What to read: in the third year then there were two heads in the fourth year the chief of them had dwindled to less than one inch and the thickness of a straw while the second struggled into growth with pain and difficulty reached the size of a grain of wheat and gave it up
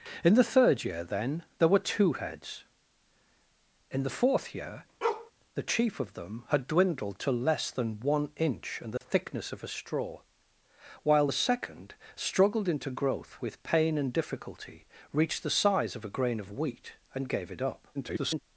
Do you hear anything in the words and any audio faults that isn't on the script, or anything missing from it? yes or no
yes